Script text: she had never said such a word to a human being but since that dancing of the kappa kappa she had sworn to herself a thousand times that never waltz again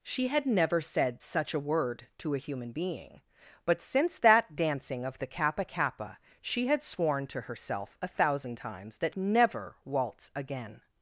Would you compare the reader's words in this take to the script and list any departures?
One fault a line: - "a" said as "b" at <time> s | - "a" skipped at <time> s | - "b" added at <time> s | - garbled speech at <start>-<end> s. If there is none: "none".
none